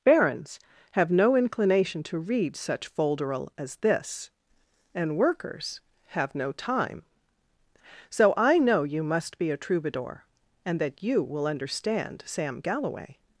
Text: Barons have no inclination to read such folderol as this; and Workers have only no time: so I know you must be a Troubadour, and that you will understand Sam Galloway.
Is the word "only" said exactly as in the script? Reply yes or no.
no